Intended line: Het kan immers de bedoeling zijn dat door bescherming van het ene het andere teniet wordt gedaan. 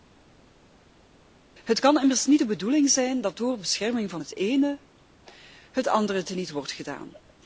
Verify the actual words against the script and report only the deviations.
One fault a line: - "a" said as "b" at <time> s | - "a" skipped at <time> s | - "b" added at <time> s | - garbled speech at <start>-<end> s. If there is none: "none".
- "niet" added at 2.3 s